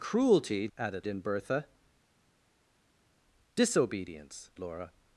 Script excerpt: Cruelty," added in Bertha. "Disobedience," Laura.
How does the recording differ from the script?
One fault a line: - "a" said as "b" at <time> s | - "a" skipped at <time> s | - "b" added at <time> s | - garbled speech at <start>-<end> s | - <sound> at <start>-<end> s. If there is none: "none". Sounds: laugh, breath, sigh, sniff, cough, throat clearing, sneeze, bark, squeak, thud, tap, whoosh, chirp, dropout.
none